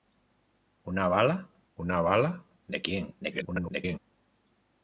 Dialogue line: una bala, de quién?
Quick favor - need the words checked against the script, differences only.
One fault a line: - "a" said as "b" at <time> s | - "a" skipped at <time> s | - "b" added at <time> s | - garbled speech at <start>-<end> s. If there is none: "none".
- "una bala" added at 1.7 s
- garbled speech at 3.2-4.0 s